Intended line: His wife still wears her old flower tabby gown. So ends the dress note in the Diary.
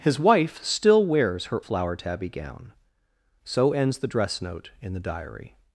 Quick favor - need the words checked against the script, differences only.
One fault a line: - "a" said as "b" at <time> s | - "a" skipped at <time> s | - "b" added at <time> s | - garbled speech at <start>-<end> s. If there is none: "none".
- "old" skipped at 1.6 s